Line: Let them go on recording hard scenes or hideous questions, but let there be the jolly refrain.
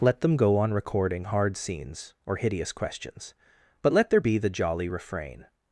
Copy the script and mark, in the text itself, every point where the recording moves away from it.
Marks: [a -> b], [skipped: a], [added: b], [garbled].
Let them go on recording hard scenes or hideous questions, but let there be the jolly refrain.